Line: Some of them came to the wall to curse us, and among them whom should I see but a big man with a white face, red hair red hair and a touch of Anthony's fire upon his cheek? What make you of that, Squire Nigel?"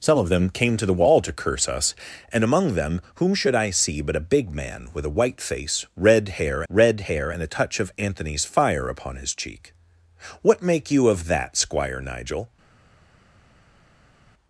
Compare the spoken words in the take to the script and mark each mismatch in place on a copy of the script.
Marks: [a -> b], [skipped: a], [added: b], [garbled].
Some of them came to the wall to curse us, and among them whom should I see but a big man with a white face, red hair red hair and a touch of Anthony's fire upon his cheek? What make you of that, Squire Nigel?"